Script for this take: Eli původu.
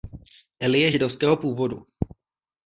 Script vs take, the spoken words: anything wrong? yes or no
yes